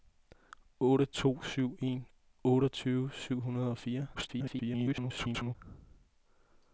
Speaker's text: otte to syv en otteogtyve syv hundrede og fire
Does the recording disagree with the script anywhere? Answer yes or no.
yes